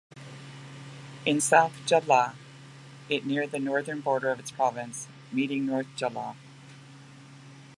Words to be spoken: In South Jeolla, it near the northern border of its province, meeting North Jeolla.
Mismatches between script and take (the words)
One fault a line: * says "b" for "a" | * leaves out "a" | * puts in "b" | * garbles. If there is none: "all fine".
all fine